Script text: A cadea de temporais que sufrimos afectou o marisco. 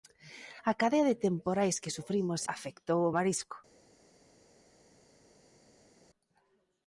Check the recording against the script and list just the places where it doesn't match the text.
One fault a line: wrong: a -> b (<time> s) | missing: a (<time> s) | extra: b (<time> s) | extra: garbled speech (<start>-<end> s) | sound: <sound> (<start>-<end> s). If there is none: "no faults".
no faults